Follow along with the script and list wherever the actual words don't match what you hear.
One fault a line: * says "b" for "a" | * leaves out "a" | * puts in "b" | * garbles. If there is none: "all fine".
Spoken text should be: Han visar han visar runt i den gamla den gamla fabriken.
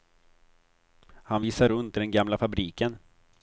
* leaves out "han visar"
* leaves out "den gamla"